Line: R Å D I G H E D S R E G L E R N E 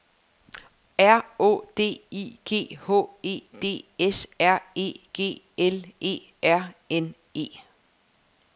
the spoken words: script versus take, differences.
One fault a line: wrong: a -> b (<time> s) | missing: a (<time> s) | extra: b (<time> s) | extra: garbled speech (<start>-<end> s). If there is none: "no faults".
no faults